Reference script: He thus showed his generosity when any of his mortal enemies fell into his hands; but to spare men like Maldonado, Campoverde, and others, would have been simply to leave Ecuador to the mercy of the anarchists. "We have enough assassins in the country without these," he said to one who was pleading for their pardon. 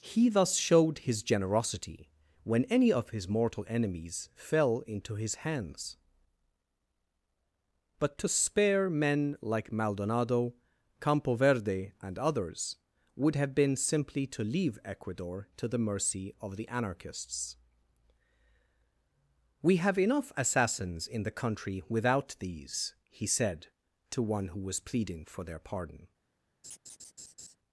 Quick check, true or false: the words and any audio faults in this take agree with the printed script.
false